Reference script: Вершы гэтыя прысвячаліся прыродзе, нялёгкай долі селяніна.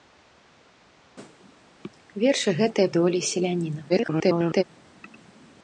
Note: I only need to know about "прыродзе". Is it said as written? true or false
false